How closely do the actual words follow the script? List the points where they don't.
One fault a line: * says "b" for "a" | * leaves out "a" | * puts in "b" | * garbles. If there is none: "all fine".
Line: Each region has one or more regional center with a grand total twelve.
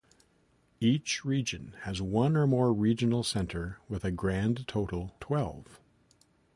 all fine